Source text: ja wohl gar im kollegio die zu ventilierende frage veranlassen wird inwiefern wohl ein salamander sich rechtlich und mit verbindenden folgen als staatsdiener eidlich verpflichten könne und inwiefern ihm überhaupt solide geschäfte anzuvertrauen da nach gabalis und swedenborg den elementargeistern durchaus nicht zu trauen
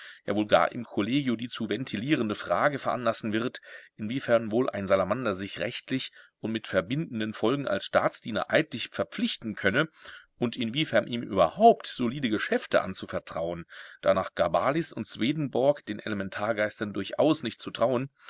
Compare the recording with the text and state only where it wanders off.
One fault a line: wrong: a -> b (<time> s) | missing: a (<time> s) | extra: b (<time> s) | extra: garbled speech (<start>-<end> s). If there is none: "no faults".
no faults